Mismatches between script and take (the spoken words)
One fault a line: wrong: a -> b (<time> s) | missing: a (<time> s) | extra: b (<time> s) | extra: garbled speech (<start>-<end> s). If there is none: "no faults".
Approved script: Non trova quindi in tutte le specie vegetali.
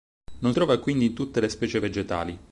no faults